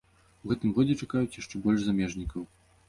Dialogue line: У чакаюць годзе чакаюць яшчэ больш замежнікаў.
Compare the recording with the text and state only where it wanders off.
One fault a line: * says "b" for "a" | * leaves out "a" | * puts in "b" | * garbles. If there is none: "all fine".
* says "гэтым" for "чакаюць"